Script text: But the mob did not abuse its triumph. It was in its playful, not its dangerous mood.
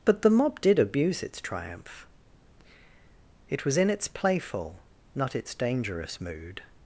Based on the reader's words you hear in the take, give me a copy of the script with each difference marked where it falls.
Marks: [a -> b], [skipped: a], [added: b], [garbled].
But the mob did [skipped: not] abuse its triumph. It was in its playful, not its dangerous mood.